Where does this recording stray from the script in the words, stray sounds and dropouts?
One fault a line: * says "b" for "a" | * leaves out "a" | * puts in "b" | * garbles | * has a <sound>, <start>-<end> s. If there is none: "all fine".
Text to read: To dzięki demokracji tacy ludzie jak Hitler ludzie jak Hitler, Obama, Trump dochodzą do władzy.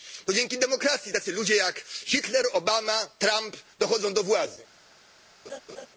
* leaves out "ludzie jak Hitler"
* has a laugh, 5.4-5.9 s